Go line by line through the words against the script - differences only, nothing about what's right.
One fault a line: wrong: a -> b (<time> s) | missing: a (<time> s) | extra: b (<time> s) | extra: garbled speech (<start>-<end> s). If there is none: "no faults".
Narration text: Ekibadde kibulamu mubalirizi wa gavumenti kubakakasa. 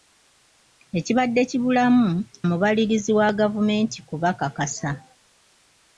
no faults